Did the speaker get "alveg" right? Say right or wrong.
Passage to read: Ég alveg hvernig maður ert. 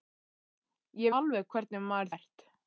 right